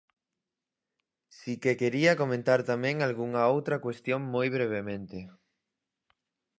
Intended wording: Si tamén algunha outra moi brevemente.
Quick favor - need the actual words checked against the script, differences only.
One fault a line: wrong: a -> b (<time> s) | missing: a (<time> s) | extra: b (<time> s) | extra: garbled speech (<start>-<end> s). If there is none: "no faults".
extra: que quería comentar (1.6 s)
extra: cuestión (3.8 s)